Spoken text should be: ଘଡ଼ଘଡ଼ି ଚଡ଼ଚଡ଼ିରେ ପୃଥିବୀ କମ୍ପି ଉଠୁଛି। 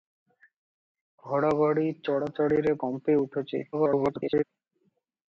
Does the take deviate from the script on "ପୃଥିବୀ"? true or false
true